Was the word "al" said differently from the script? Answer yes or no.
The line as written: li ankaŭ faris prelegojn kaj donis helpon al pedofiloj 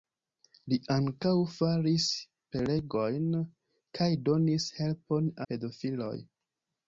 yes